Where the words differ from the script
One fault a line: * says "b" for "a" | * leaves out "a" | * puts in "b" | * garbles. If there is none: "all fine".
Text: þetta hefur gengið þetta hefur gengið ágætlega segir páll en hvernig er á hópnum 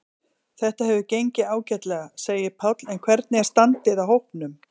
* leaves out "þetta hefur gengið"
* puts in "standið"